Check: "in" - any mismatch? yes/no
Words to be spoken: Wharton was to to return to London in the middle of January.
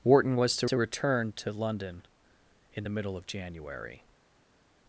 no